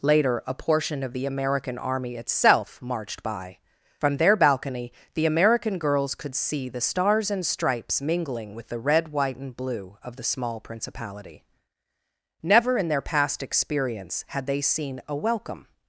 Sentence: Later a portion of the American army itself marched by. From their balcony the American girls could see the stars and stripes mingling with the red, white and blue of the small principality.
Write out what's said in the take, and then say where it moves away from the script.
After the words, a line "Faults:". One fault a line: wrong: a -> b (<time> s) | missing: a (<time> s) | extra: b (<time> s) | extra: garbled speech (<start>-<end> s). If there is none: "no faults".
Later a portion of the American army itself marched by. From their balcony the American girls could see the stars and stripes mingling with the red, white and blue of the small principality. Never in their past experience had they seen a welcome
Faults:
extra: Never in their past experience had they seen a welcome (12.4 s)